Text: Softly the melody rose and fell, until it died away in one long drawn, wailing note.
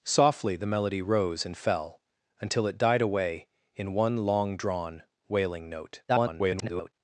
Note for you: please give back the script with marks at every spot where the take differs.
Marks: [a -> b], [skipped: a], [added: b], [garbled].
Softly the melody rose and fell, until it died away in one long drawn, wailing note. [garbled]